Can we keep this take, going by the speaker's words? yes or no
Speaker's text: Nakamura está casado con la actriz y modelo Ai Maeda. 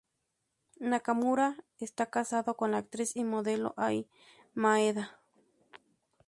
yes